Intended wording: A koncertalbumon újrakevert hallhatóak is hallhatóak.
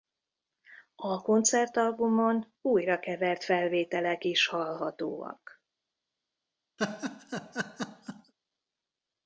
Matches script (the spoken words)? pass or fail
fail